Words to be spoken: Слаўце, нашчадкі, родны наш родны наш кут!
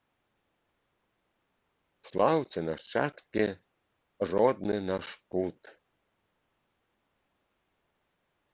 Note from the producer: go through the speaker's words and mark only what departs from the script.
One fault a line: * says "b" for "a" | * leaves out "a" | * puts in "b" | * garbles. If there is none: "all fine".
* leaves out "родны наш"